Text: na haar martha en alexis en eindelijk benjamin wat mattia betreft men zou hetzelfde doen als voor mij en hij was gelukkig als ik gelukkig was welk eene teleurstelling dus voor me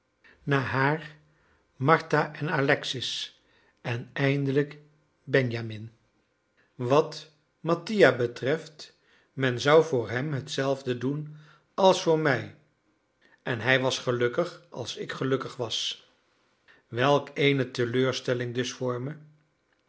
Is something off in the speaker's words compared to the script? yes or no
yes